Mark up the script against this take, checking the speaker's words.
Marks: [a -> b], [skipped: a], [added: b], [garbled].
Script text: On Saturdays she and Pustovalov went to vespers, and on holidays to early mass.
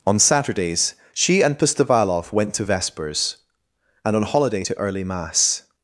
On Saturdays she and Pustovalov went to vespers, and on [holidays -> holiday] to early mass.